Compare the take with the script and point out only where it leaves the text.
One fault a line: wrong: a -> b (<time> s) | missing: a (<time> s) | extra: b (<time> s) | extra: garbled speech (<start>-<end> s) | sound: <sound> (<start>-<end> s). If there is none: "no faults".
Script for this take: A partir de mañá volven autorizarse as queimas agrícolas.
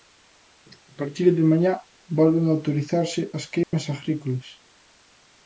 sound: dropout (3.6-3.7 s)